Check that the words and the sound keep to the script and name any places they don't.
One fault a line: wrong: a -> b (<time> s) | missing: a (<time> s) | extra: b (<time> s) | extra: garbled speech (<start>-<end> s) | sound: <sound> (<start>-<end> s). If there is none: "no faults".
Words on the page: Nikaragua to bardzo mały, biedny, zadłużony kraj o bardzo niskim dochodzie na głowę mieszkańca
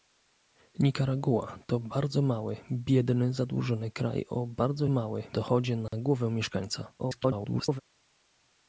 wrong: niskim -> mały (4.9 s)
sound: dropout (5.9-5.9 s)
extra: garbled speech (7.0-7.8 s)